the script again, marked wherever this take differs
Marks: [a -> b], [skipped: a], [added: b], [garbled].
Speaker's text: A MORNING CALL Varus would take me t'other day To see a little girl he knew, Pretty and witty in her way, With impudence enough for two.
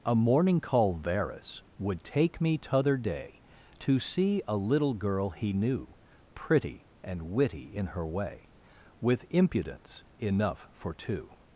A MORNING CALL Varus would take me t'other day To see a little girl he knew, Pretty and witty in her way, With impudence enough for two.